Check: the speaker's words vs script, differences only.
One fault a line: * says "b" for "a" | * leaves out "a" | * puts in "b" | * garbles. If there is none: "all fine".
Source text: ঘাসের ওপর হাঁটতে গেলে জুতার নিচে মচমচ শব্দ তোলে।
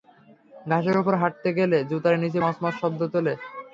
all fine